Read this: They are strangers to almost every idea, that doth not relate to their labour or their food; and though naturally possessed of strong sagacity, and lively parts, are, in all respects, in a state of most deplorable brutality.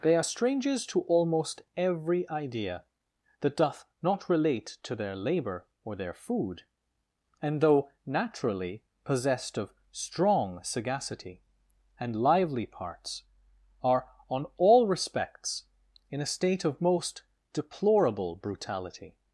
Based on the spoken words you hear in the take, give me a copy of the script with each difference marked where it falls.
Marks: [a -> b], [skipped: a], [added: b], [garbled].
They are strangers to almost every idea, that doth not relate to their labour or their food; and though naturally possessed of strong sagacity, and lively parts, are, [in -> on] all respects, in a state of most deplorable brutality.